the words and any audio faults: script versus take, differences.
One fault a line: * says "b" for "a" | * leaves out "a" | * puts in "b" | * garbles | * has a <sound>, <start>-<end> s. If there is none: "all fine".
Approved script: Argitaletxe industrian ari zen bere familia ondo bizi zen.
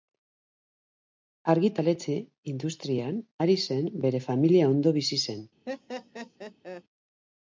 * has a laugh, 5.7-6.8 s